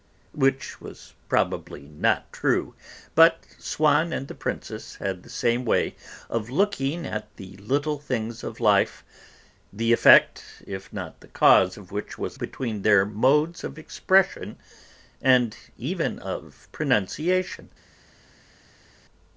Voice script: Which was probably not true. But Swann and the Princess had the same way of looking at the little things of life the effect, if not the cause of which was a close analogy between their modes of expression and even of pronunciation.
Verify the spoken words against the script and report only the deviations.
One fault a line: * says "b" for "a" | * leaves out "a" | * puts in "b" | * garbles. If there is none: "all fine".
* leaves out "a close analogy"